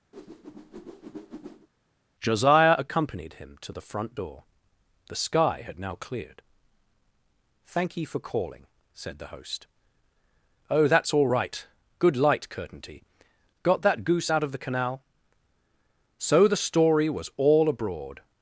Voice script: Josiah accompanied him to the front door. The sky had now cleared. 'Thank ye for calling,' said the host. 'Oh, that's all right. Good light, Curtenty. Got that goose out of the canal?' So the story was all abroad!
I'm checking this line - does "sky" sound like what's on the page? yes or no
yes